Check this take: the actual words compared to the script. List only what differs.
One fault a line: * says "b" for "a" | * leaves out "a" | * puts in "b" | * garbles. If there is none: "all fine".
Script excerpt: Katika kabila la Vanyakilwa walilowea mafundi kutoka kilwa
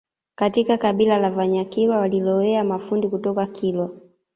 all fine